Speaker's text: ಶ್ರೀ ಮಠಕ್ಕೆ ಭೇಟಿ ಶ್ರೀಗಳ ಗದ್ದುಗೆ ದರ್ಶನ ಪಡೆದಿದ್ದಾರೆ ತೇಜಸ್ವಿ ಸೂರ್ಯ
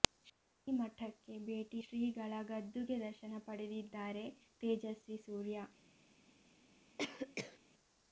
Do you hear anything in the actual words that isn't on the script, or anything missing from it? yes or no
no